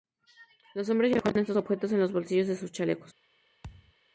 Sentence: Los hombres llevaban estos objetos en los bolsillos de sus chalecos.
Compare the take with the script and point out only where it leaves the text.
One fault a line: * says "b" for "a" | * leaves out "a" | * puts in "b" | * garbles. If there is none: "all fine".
all fine